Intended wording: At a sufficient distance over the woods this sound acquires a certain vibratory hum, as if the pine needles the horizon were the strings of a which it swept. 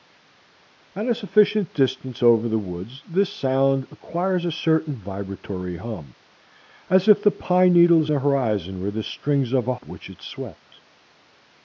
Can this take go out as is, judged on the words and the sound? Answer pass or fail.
pass